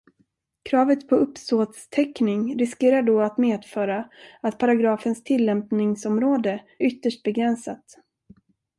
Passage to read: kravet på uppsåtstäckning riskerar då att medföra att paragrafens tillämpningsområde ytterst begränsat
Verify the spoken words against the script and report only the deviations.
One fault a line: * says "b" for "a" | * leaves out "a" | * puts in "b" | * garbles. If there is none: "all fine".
all fine